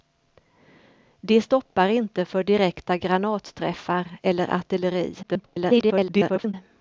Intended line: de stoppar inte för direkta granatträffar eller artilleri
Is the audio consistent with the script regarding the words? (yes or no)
no